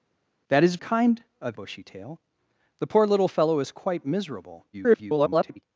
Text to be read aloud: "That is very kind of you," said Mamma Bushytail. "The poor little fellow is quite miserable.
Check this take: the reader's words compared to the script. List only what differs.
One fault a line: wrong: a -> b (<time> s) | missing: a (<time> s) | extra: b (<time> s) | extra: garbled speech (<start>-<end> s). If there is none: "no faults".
missing: very (0.8 s)
missing: you said Mamma (1.6 s)
extra: garbled speech (4.7-5.6 s)